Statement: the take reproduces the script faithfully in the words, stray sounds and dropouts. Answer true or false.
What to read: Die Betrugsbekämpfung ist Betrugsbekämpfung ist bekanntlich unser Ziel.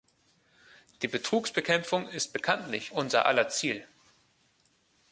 false